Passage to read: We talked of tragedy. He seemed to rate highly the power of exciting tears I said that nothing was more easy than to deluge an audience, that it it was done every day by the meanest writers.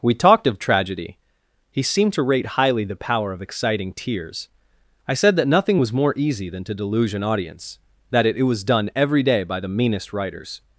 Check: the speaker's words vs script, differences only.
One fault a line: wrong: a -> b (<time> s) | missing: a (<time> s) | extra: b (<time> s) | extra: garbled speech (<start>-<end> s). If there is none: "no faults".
no faults